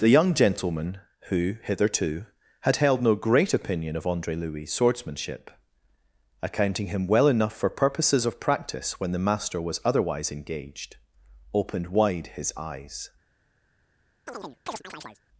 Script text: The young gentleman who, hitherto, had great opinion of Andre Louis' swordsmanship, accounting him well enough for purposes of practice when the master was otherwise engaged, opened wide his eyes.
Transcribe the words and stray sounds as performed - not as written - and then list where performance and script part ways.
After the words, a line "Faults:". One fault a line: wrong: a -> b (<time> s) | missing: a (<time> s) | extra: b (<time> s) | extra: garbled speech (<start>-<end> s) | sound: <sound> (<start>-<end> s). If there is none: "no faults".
The young gentleman who, hitherto, had held no great opinion of Andre Louis' swordsmanship, accounting him well enough for purposes of practice when the master was otherwise engaged, opened wide his eyes.
Faults:
extra: held no (2.8 s)
sound: chirp (14.3-15.2 s)